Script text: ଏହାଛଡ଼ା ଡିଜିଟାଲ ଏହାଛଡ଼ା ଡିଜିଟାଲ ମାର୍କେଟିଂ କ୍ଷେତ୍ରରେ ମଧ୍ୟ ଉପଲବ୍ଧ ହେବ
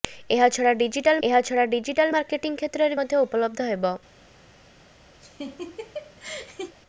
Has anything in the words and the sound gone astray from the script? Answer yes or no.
yes